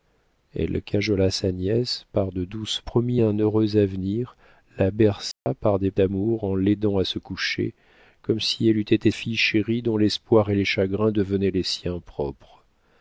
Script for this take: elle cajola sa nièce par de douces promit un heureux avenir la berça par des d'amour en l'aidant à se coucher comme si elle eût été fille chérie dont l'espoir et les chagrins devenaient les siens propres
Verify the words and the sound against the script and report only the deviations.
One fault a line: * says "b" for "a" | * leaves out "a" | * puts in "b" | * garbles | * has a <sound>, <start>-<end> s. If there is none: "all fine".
* has a dropout, 5.3-5.5 s